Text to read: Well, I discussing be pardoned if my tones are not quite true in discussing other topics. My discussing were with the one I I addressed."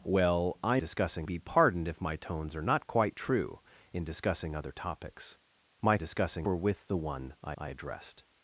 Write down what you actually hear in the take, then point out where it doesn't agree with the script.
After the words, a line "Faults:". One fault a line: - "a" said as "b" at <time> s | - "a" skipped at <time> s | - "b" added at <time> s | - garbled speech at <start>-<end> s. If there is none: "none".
Well, I discussing be pardoned if my tones are not quite true in discussing other topics. My discussing were with the one I I addressed."
Faults:
none